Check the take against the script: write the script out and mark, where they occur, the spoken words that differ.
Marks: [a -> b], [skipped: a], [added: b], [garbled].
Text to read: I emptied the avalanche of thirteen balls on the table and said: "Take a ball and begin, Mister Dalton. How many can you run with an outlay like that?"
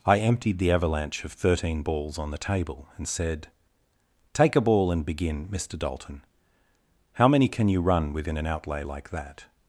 I emptied the avalanche of thirteen balls on the table and said: "Take a ball and begin, Mister Dalton. How many can you run [with -> within] an outlay like that?"